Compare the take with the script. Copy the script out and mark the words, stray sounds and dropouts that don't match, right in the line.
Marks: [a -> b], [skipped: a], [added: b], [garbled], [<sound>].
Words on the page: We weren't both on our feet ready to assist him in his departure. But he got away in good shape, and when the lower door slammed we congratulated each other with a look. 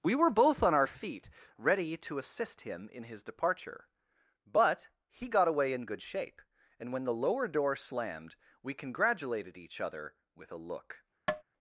We [weren't -> were] both on our feet ready to assist him in his departure. But he got away in good shape, and when the lower door slammed we congratulated each other with a look. [tap]